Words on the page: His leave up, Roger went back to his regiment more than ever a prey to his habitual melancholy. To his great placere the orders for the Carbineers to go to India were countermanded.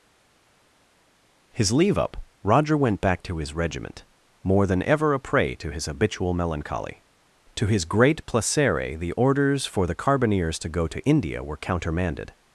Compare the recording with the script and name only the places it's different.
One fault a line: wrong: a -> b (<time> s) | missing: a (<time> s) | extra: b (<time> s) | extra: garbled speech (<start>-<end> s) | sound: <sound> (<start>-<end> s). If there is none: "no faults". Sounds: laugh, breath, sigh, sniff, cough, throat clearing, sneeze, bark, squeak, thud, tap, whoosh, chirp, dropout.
no faults